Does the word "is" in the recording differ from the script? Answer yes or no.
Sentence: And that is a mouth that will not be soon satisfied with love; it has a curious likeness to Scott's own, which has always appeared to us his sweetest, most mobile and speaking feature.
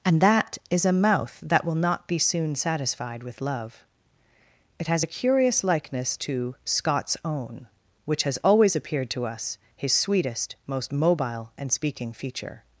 no